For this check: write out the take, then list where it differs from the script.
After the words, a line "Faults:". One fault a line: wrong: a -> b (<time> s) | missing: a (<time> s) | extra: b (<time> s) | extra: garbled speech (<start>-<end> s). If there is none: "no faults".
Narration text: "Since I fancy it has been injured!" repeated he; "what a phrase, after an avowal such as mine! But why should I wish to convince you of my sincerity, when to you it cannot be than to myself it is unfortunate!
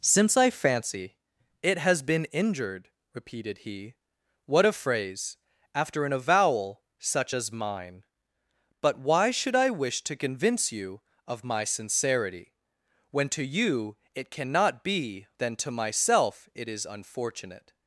"Since I fancy it has been injured!" repeated he; "what a phrase, after an avowal such as mine! But why should I wish to convince you of my sincerity, when to you it cannot be than to myself it is unfortunate!
Faults:
no faults